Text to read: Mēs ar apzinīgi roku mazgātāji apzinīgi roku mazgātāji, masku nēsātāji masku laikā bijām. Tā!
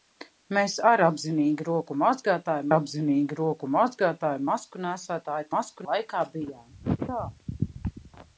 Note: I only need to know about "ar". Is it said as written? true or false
true